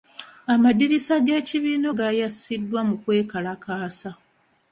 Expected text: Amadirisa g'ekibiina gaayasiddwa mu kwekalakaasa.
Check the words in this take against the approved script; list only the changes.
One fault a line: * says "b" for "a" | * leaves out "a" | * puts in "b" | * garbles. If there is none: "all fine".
all fine